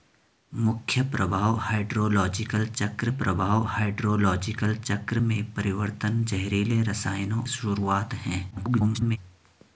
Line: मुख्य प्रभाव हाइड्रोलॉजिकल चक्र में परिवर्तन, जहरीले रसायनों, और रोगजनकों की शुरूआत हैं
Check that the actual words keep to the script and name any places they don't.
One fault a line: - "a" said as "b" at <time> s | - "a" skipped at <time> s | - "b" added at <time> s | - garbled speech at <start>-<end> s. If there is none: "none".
- "प्रभाव हाइड्रोलॉजिकल चक्र" added at 3.1 s
- "और रोगजनकों की" skipped at 7.4 s
- garbled speech at 8.5-9.2 s